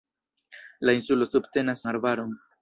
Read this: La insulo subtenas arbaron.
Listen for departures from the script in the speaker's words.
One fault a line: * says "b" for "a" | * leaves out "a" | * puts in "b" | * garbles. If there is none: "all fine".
all fine